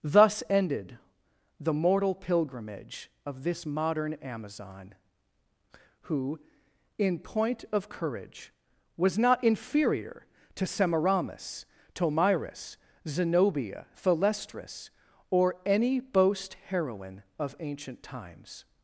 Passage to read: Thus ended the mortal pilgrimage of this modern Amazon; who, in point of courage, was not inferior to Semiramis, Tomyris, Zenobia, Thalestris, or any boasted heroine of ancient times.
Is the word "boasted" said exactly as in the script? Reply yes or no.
no